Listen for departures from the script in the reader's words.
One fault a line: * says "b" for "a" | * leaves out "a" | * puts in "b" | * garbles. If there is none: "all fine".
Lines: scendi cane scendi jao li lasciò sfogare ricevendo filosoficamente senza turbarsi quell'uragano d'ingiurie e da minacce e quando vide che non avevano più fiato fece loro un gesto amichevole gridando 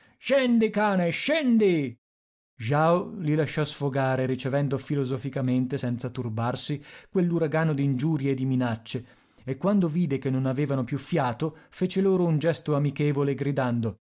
* says "di" for "da"